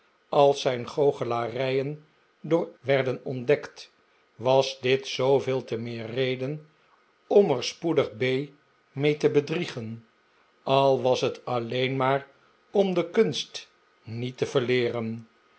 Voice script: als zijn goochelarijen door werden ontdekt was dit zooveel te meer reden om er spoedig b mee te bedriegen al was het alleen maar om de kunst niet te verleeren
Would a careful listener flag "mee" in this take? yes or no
no